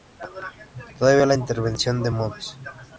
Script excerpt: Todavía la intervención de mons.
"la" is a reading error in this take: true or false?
false